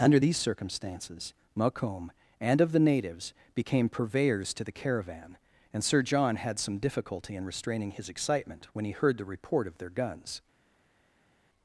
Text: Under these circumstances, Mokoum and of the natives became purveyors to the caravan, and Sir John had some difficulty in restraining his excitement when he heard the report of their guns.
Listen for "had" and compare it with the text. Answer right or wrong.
right